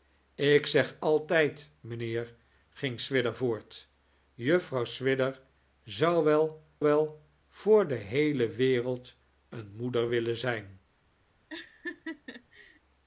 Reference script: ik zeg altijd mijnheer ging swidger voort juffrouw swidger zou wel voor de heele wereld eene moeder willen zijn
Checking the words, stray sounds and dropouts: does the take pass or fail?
fail